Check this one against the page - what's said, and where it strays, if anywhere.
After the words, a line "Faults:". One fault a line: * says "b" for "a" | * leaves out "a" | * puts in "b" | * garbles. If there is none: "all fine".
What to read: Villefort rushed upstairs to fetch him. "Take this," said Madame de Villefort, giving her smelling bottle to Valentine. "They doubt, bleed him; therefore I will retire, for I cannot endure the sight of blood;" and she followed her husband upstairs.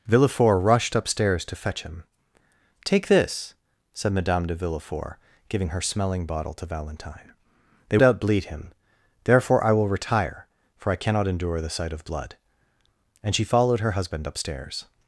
Villefort rushed upstairs to fetch him. "Take this," said Madame de Villefort, giving her smelling bottle to Valentine. "They doubt, bleed him; therefore I will retire, for I cannot endure the sight of blood;" and she followed her husband upstairs.
Faults:
all fine